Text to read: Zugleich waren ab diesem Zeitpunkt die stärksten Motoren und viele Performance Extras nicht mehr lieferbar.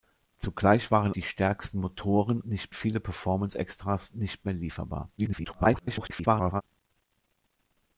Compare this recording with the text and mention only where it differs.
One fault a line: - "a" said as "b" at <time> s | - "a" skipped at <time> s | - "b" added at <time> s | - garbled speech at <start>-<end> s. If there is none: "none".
- "ab diesem Zeitpunkt" skipped at 1.1 s
- "und" said as "nicht" at 2.4 s
- garbled speech at 5.2-6.6 s